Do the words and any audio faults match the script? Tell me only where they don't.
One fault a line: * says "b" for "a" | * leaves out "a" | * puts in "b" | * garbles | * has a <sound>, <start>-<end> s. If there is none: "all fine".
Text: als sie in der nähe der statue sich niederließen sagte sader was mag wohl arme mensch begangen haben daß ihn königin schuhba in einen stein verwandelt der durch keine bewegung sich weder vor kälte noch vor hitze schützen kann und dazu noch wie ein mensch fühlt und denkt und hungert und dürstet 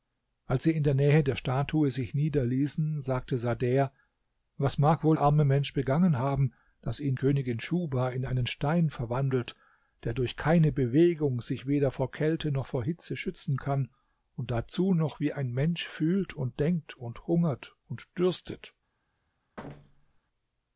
* has a thud, 19.6-20.2 s